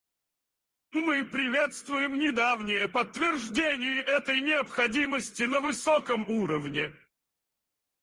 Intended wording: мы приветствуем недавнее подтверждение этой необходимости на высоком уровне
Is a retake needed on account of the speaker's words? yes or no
no